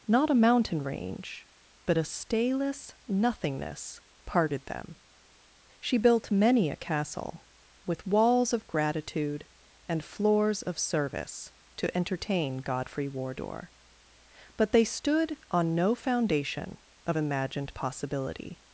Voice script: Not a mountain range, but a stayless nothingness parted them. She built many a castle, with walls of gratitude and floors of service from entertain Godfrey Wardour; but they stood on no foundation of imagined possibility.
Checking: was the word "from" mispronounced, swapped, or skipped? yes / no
yes